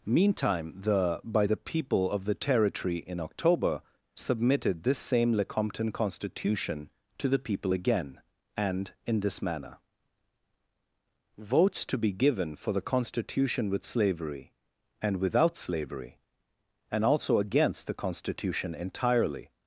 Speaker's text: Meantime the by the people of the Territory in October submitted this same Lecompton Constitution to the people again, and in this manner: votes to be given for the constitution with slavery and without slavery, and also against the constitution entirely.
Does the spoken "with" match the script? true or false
true